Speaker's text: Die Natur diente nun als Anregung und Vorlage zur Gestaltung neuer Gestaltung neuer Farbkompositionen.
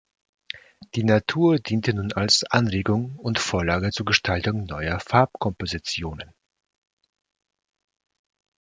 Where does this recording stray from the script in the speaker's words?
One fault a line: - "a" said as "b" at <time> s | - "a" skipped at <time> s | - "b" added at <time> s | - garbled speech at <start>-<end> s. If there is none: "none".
- "Gestaltung neuer" skipped at 5.0 s